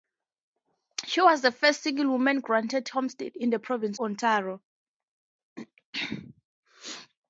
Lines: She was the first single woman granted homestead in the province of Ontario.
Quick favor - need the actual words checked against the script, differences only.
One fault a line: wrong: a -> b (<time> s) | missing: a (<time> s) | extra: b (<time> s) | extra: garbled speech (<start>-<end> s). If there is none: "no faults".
missing: of (4.0 s)